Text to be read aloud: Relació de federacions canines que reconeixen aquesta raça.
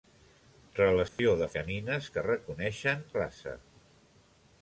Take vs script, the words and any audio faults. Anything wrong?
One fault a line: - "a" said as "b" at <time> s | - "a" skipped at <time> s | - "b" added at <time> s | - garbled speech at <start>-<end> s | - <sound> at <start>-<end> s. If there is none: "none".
- dropout at 1.1-1.2 s
- "federacions" skipped at 1.5 s
- "aquesta" skipped at 3.0 s